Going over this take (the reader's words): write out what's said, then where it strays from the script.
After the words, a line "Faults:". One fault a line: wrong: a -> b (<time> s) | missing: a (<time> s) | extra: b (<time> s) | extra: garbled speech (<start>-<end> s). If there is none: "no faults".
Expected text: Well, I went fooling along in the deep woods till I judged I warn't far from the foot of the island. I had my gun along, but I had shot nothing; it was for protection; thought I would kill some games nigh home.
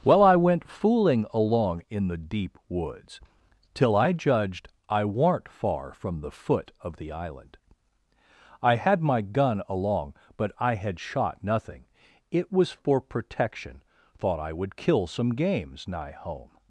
Well, I went fooling along in the deep woods till I judged I warn't far from the foot of the island. I had my gun along, but I had shot nothing; it was for protection; thought I would kill some games nigh home.
Faults:
no faults